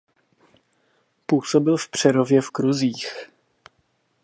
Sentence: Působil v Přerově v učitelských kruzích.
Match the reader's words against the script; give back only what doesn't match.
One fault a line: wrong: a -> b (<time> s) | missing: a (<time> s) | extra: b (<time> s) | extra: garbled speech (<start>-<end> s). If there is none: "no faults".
missing: učitelských (2.5 s)